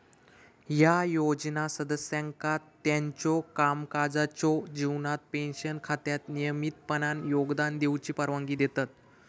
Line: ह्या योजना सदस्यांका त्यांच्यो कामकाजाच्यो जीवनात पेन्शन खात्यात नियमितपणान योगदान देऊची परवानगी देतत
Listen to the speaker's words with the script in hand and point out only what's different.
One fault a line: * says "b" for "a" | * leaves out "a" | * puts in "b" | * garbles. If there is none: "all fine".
all fine